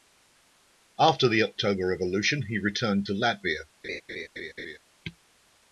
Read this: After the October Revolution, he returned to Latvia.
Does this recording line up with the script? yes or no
yes